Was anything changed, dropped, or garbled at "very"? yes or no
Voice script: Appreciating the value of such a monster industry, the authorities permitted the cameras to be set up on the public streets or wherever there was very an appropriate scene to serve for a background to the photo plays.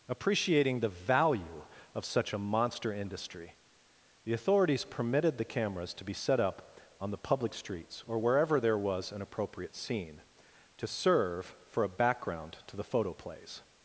yes